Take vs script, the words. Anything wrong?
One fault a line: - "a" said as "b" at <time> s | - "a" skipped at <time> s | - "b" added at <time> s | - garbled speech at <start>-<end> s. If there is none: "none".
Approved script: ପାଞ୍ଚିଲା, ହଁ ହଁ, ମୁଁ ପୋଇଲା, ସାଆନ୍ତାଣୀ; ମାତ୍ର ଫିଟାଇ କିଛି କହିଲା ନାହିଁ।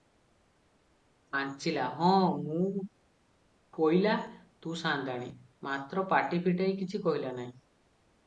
- "ହଁ" skipped at 2.1 s
- "ତୁ" added at 4.6 s
- "ପାଟି" added at 6.1 s